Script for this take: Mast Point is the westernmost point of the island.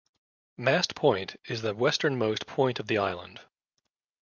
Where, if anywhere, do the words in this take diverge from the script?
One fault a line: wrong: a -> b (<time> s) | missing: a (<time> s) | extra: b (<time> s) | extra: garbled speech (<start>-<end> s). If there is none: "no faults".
no faults